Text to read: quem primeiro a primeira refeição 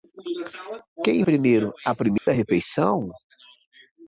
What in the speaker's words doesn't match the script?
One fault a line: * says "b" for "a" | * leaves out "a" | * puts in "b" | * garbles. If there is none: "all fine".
all fine